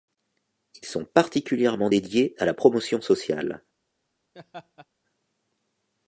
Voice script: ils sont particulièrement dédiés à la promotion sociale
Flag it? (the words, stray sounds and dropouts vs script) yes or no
yes